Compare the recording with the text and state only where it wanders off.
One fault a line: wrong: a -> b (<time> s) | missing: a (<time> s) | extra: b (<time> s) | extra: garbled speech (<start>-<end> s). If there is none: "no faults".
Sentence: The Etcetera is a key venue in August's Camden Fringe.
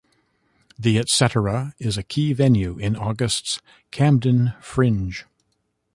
no faults